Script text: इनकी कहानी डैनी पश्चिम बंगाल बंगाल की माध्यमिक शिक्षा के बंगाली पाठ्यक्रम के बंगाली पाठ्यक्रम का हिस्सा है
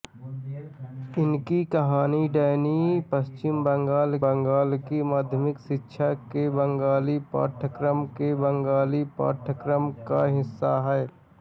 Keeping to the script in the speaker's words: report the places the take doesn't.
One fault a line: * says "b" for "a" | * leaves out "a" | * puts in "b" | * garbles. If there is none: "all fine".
all fine